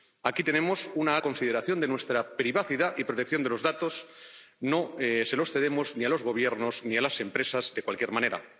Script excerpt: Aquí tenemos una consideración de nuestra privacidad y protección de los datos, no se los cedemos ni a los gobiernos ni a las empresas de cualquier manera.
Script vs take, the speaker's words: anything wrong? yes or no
no